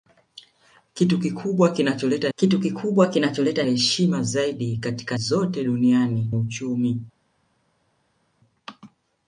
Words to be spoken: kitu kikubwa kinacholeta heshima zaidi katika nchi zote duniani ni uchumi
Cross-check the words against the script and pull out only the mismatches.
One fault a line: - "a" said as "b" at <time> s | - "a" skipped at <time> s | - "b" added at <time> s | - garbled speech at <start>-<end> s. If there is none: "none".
- "kitu kikubwa kinacholeta" added at 2.4 s
- "nchi" skipped at 5.2 s
- "ni" skipped at 6.3 s